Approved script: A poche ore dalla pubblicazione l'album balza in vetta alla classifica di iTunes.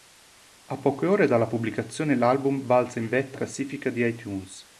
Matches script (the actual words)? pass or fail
fail